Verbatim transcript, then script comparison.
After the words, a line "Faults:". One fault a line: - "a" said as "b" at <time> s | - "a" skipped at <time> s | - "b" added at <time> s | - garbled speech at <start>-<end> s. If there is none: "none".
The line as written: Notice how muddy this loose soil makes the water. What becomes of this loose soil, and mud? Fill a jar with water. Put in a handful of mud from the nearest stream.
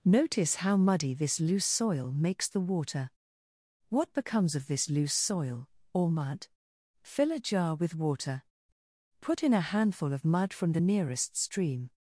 Notice how muddy this loose soil makes the water. What becomes of this loose soil, or mud? Fill a jar with water. Put in a handful of mud from the nearest stream.
Faults:
- "and" said as "or" at 5.9 s